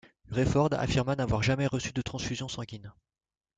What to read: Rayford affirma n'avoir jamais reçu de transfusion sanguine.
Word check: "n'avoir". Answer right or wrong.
right